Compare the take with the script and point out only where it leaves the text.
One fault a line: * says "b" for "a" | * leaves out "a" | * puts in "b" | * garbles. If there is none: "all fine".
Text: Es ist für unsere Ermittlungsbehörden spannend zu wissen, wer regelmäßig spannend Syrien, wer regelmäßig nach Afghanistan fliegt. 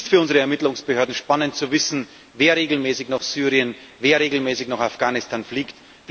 * says "nach" for "spannend"